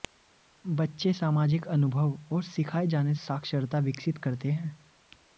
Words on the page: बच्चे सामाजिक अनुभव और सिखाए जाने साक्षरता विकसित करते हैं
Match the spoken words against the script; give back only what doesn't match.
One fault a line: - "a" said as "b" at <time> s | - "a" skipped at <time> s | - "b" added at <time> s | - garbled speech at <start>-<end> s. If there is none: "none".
none